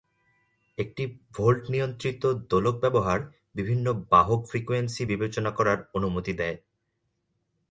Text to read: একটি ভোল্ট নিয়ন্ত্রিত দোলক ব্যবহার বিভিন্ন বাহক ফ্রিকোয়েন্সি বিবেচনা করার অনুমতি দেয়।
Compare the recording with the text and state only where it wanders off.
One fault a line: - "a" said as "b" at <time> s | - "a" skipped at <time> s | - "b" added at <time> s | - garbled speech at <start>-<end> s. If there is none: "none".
none